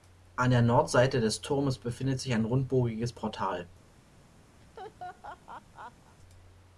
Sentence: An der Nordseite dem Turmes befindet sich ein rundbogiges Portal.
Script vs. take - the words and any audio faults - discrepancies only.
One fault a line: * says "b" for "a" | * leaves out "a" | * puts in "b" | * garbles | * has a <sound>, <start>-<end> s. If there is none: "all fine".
* says "des" for "dem"
* has a laugh, 4.6-6.2 s